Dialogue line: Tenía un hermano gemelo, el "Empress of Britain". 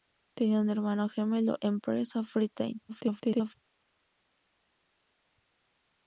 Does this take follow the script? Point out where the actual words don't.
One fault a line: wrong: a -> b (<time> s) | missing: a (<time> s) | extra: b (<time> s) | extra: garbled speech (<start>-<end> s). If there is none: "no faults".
missing: el (1.6 s)
extra: garbled speech (2.9-3.5 s)